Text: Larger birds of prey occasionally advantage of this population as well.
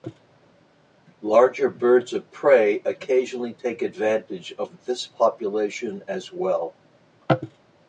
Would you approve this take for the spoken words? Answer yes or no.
no